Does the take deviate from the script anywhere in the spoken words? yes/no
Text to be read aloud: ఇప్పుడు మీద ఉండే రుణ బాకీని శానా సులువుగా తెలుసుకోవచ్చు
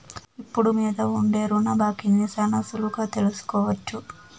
no